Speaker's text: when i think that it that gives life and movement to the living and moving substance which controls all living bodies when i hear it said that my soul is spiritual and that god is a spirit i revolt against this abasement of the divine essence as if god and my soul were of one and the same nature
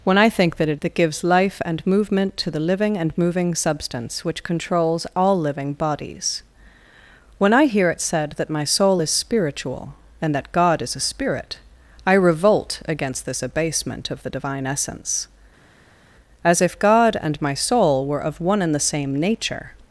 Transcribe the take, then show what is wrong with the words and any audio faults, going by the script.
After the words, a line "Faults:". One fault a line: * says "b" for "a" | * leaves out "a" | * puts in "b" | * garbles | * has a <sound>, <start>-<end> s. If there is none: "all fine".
when i think that it that gives life and movement to the living and moving substance which controls all living bodies when i hear it said that my soul is spiritual and that god is a spirit i revolt against this abasement of the divine essence as if god and my soul were of one and the same nature
Faults:
all fine